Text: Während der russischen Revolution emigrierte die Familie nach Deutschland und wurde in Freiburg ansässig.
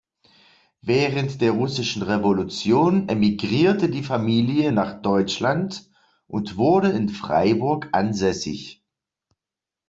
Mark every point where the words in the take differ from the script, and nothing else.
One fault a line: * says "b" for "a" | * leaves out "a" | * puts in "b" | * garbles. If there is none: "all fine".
all fine